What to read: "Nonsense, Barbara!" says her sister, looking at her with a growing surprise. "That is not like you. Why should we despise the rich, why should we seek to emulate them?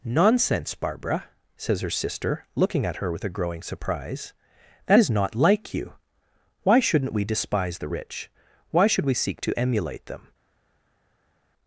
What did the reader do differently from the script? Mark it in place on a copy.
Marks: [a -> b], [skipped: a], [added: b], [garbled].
"Nonsense, Barbara!" says her sister, looking at her with a growing surprise. "That is not like you. Why [should -> shouldn't] we despise the rich, why should we seek to emulate them?